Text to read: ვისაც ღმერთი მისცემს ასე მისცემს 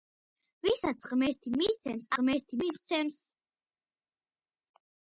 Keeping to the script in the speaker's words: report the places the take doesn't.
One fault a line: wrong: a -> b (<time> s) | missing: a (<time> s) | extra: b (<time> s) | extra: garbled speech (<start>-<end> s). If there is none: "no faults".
wrong: ასე -> ღმერთი (2.2 s)